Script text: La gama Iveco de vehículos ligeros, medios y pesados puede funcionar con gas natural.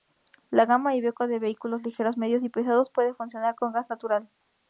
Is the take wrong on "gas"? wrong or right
right